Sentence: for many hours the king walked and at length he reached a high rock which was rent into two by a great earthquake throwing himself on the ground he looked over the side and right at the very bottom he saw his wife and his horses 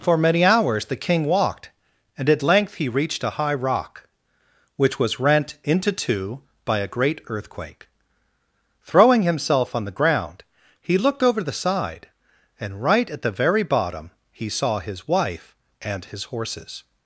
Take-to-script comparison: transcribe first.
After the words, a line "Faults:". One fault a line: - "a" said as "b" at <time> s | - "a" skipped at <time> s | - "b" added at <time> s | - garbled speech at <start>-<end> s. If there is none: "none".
for many hours the king walked and at length he reached a high rock which was rent into two by a great earthquake throwing himself on the ground he looked over the side and right at the very bottom he saw his wife and his horses
Faults:
none